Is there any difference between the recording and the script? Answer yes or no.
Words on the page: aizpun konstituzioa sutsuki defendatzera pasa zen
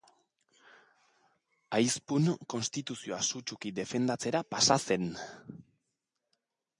no